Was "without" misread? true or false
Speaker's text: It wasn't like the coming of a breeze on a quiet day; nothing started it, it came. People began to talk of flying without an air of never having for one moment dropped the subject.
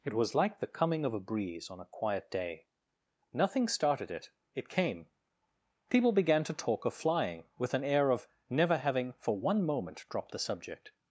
true